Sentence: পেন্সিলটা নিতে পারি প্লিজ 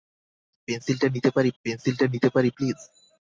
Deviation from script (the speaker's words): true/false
true